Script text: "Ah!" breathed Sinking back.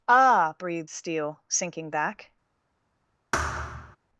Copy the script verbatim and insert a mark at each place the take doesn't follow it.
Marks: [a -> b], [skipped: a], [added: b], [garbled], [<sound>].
"Ah!" breathed [added: Steele] Sinking back. [thud]